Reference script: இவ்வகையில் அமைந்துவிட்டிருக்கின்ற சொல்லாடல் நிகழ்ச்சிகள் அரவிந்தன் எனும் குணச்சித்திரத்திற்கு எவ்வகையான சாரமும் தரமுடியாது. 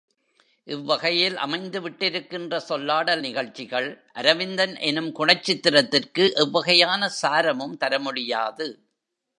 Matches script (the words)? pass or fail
pass